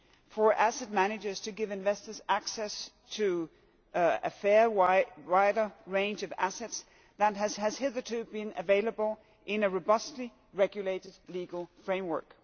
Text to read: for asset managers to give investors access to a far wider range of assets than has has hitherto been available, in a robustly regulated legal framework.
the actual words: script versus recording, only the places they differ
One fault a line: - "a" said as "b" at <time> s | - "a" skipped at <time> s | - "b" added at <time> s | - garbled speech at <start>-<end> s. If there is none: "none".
none